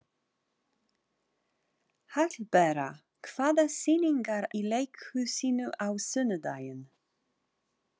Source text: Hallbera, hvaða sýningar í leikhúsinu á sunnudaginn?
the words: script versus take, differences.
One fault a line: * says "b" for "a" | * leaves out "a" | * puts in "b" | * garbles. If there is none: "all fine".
all fine